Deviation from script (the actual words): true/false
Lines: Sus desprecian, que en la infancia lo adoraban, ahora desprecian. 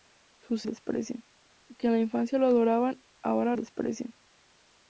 false